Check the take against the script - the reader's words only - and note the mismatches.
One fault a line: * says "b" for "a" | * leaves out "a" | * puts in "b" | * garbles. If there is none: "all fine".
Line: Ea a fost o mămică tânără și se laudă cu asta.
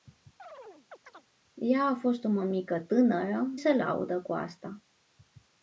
* leaves out "și"